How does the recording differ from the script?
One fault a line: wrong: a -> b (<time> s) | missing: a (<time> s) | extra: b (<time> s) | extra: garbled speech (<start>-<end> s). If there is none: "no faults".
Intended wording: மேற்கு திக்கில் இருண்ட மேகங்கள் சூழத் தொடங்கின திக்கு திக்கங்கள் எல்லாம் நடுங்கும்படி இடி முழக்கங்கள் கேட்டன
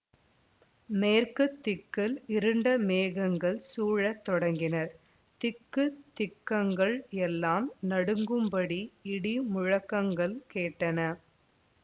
no faults